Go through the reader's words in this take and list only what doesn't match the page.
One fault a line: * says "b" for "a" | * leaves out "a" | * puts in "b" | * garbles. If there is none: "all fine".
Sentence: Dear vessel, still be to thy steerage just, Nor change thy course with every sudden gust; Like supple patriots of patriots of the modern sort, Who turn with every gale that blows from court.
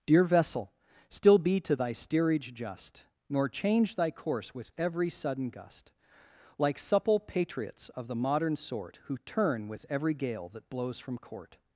* leaves out "patriots of"